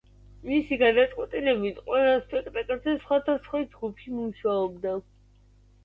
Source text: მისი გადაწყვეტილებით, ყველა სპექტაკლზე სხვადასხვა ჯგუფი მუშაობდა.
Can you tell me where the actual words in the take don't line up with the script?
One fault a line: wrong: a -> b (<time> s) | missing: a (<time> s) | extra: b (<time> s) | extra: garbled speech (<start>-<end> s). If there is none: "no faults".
no faults